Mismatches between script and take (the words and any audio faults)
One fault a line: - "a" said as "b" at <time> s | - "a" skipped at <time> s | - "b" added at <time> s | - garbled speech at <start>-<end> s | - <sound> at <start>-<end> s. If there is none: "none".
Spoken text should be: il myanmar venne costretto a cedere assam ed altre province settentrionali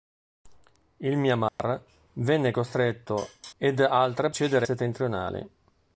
- dropout at 1.5-1.6 s
- "a cedere assam" skipped at 3.3 s
- "province" said as "cedere" at 4.3 s